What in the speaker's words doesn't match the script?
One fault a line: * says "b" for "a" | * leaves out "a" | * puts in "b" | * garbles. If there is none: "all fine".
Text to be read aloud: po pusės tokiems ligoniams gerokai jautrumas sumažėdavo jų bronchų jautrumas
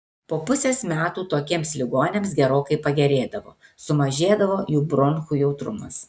* puts in "metų"
* says "pagerėdavo" for "jautrumas"